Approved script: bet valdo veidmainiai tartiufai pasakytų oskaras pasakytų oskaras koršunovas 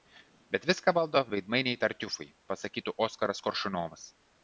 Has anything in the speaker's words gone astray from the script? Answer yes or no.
yes